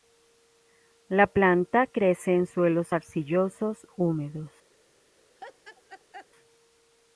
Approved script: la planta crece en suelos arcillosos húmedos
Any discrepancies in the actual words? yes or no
no